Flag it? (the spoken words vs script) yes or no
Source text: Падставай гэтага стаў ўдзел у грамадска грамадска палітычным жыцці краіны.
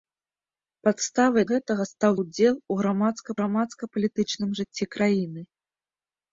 no